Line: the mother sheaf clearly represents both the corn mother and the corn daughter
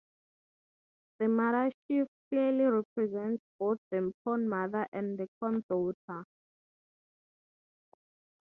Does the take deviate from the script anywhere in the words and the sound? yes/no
no